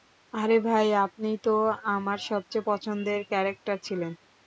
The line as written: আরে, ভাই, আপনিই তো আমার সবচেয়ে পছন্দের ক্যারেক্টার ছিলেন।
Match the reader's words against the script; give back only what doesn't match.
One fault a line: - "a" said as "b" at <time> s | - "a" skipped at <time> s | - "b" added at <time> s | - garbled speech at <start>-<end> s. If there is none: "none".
none